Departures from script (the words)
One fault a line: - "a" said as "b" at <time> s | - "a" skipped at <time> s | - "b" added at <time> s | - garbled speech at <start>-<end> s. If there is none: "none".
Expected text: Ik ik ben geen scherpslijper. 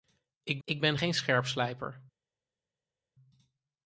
none